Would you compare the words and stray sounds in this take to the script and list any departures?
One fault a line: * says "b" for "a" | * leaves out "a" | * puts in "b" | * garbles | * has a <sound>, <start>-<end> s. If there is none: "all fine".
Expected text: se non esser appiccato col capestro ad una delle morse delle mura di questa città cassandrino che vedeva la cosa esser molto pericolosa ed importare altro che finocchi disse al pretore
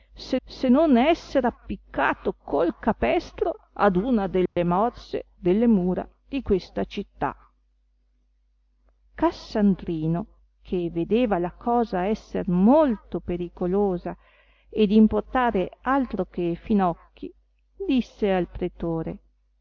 * puts in "se"
* has a dropout, 4.5-4.6 s